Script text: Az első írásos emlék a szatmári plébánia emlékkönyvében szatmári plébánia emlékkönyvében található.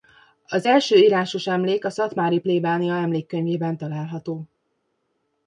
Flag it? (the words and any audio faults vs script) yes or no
yes